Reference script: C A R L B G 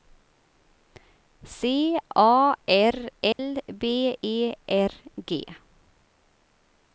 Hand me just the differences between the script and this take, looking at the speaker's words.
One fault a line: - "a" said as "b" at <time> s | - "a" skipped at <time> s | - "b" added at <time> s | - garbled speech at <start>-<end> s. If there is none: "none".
- "E R" added at 4.2 s